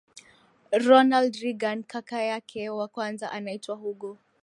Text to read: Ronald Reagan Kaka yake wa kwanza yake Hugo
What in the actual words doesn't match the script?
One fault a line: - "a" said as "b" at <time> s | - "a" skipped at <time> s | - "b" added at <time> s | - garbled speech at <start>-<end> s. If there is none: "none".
- "yake" said as "anaitwa" at 3.3 s